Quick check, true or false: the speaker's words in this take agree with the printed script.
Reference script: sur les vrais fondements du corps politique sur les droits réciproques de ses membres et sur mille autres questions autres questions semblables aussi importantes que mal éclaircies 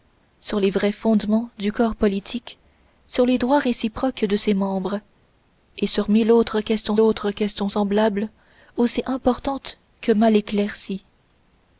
true